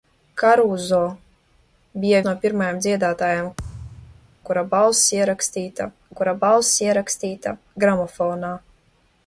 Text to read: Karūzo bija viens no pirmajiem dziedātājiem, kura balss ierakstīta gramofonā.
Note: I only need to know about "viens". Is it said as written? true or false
false